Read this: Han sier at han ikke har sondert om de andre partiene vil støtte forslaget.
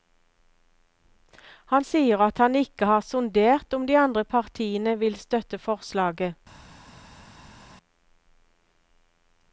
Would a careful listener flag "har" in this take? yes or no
no